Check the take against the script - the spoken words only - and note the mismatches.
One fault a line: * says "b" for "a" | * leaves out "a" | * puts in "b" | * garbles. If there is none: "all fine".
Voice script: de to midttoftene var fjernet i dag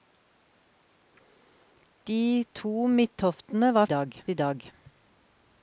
* says "dag" for "fjernet"